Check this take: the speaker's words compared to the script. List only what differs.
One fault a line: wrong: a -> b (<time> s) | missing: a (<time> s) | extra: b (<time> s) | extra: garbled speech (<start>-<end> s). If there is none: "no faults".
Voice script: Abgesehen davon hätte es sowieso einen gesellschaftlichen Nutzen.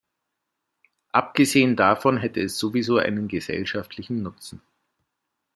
no faults